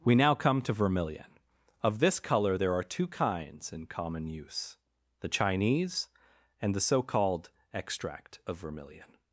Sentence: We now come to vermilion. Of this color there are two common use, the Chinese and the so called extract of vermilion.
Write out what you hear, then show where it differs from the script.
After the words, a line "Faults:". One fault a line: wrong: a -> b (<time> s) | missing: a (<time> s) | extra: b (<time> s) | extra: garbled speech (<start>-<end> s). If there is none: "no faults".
We now come to vermilion. Of this color there are two kinds in common use, the Chinese and the so called extract of vermilion.
Faults:
extra: kinds in (3.0 s)